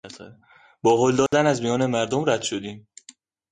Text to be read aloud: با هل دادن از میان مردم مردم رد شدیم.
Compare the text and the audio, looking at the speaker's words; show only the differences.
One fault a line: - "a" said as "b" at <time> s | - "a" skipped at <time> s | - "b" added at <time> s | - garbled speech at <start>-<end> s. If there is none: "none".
- "مردم" skipped at 2.2 s